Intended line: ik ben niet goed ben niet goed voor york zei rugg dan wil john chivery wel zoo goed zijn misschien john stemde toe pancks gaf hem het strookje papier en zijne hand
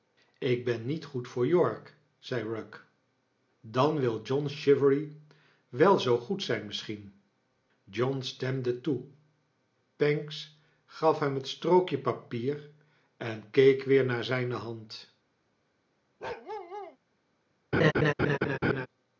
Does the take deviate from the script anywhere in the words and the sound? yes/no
yes